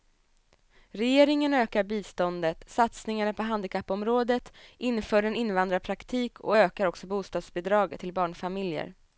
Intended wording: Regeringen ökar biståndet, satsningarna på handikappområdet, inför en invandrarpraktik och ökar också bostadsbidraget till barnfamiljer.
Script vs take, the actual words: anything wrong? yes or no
no